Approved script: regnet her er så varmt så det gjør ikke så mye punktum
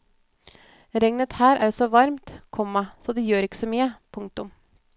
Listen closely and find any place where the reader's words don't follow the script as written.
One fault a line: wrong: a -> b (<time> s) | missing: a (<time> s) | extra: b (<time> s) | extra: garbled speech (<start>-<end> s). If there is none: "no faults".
extra: komma (2.6 s)